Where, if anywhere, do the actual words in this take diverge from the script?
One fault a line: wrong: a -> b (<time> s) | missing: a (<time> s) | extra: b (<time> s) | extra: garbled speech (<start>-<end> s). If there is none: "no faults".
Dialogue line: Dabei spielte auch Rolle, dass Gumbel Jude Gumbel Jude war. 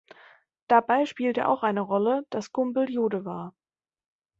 extra: eine (1.6 s)
missing: Gumbel Jude (3.3 s)